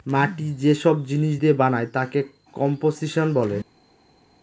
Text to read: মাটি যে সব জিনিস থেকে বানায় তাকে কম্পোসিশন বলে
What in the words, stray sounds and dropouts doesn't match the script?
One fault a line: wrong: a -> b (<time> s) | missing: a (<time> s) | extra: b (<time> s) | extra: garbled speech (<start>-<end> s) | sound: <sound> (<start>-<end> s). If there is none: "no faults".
wrong: থেকে -> দিয়ে (1.4 s)